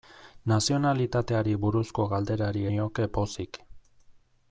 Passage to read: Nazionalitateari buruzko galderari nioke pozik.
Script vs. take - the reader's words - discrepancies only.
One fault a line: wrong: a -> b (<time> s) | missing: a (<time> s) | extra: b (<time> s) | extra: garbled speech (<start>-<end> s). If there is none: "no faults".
no faults